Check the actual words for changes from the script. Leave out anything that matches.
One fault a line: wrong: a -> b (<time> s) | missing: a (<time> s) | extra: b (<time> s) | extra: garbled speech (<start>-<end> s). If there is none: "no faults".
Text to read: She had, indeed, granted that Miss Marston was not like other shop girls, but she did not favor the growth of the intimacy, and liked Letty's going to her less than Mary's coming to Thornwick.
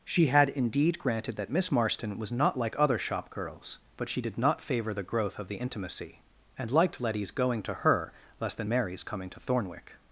no faults